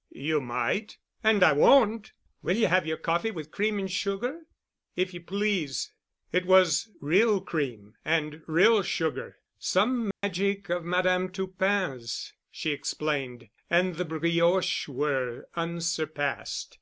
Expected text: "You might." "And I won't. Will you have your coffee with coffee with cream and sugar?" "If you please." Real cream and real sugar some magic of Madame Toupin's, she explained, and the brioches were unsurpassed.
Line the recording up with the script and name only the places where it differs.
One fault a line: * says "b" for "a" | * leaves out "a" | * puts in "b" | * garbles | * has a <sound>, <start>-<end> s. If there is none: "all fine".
* leaves out "coffee with"
* puts in "It was"
* has a dropout, 10.1-10.2 s